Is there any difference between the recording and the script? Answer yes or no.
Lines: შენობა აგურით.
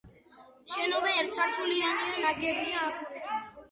yes